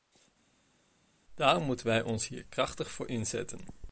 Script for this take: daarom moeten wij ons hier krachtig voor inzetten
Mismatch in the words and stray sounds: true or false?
false